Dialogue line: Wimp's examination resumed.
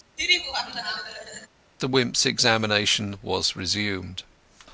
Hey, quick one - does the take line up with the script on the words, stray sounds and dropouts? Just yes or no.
no